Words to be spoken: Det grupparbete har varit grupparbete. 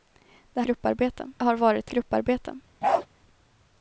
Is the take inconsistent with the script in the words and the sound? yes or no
yes